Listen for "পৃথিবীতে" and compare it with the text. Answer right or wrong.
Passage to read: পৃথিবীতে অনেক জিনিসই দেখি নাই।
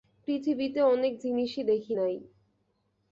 right